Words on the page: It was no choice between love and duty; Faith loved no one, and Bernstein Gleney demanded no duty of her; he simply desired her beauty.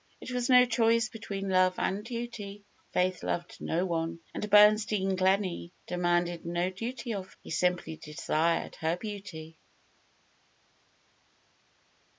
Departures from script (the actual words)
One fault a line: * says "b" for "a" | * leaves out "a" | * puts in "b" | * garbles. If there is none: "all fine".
* leaves out "her"